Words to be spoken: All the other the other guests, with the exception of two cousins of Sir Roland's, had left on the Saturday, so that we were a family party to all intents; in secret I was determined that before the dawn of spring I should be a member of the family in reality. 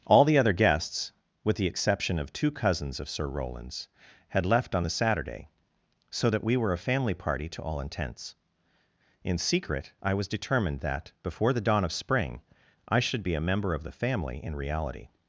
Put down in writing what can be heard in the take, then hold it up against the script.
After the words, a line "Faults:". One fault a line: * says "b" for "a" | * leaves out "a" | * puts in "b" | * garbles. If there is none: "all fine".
All the other guests, with the exception of two cousins of Sir Roland's, had left on the Saturday, so that we were a family party to all intents; in secret I was determined that before the dawn of spring I should be a member of the family in reality.
Faults:
* leaves out "the other"